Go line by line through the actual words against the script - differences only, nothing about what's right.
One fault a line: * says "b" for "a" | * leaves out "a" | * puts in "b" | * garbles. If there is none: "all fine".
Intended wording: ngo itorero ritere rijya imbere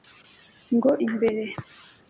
* leaves out "itorero ritere rijya"